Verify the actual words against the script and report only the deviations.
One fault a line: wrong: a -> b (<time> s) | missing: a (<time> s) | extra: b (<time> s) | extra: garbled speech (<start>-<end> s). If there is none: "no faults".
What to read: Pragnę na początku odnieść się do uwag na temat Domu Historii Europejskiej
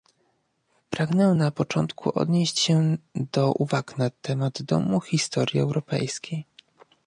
no faults